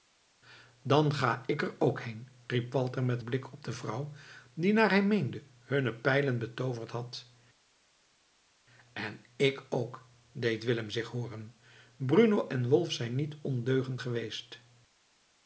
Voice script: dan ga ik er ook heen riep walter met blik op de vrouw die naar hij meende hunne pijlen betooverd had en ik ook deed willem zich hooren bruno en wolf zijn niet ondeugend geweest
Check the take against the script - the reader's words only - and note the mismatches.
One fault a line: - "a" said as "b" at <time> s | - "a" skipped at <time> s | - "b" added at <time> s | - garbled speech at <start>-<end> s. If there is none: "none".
none